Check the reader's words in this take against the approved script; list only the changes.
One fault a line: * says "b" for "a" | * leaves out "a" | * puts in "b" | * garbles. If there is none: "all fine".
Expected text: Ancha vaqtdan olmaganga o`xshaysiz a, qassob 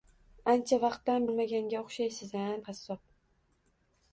all fine